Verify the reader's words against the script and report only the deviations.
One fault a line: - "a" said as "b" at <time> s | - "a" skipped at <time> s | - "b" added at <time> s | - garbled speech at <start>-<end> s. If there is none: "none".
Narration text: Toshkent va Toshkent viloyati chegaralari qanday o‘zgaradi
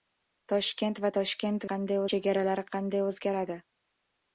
- "viloyati" said as "qanday" at 1.7 s